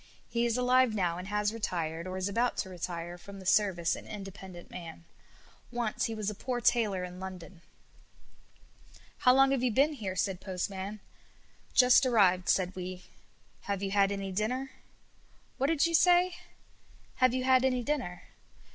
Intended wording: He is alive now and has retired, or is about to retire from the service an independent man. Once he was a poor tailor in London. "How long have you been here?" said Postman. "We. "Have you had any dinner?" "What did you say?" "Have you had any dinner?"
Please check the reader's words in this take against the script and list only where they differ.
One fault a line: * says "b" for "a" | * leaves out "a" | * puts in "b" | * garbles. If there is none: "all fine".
* puts in "Just arrived said"